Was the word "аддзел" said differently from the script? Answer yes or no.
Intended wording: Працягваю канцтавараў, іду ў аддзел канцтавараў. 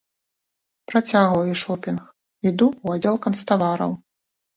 no